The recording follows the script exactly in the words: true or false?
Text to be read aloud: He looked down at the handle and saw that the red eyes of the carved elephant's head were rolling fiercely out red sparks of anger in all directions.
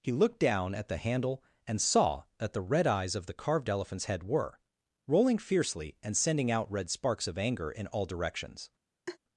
false